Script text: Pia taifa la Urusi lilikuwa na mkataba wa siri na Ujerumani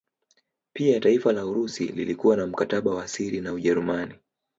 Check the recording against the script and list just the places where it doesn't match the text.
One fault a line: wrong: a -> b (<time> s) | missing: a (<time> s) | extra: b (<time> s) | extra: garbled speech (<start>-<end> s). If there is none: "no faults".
no faults